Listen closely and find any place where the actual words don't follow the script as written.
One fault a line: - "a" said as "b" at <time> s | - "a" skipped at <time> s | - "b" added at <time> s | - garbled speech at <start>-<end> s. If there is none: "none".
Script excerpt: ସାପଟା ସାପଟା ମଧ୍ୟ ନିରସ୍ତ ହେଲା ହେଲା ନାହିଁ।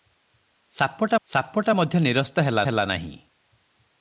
none